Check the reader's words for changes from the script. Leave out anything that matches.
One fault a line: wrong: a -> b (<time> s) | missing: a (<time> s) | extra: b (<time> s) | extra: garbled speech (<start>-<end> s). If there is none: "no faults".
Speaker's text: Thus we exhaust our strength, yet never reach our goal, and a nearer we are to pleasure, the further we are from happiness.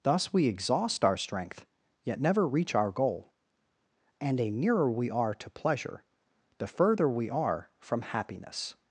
no faults